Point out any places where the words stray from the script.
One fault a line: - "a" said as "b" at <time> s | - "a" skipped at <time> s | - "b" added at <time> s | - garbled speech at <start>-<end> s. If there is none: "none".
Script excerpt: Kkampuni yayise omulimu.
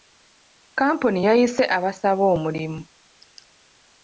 - "abasaba" added at 1.8 s